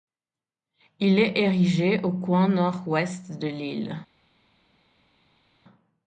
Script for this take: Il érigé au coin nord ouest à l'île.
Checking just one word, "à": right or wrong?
wrong